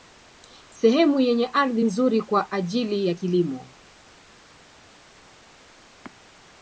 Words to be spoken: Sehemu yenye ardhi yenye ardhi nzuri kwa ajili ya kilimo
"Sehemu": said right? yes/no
yes